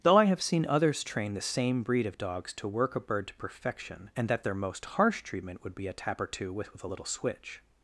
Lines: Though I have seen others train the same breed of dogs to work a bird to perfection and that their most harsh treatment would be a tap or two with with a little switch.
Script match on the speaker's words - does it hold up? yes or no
yes